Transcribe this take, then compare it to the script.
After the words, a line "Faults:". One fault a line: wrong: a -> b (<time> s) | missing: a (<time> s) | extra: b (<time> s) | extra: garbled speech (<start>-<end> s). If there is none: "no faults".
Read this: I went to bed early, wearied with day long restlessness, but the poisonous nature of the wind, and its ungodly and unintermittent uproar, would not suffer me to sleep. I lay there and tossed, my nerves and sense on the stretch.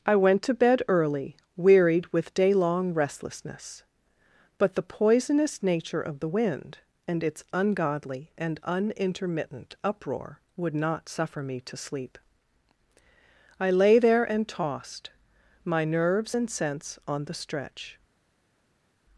I went to bed early, wearied with day long restlessness, but the poisonous nature of the wind, and its ungodly and unintermittent uproar, would not suffer me to sleep. I lay there and tossed, my nerves and sense on the stretch.
Faults:
no faults